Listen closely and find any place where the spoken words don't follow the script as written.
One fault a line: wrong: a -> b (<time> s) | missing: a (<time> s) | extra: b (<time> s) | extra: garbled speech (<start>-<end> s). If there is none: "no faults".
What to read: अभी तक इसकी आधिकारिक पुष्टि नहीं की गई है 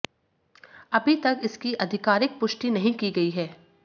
no faults